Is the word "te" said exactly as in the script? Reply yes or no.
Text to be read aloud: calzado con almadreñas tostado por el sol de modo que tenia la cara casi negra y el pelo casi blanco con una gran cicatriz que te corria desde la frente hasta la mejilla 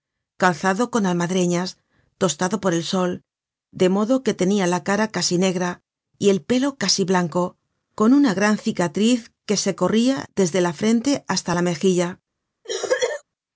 no